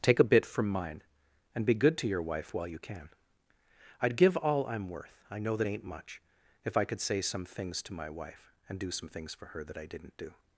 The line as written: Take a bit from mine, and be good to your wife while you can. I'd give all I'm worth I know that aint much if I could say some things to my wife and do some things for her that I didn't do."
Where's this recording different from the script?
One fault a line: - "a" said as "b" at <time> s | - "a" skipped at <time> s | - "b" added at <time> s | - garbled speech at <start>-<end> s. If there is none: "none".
none